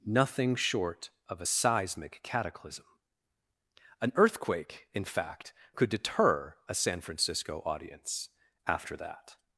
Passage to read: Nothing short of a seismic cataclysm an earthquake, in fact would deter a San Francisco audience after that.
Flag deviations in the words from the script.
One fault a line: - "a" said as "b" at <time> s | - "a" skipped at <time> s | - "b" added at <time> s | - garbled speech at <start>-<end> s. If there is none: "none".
- "would" said as "could" at 5.7 s